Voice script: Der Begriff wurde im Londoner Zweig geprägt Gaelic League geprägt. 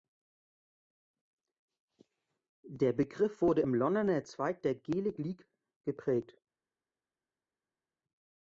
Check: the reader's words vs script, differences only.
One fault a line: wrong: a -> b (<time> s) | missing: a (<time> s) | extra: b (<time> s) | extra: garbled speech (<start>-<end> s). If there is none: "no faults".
wrong: geprägt -> der (4.6 s)